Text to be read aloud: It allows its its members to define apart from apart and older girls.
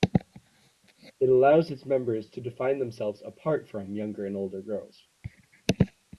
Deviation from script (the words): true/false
true